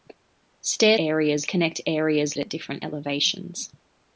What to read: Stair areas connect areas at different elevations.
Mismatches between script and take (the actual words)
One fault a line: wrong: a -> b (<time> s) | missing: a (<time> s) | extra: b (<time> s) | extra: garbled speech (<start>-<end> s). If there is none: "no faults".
no faults